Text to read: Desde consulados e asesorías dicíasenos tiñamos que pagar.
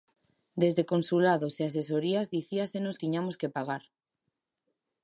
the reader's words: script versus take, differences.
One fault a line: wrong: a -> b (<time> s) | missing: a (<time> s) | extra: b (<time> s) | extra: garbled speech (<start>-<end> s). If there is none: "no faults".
no faults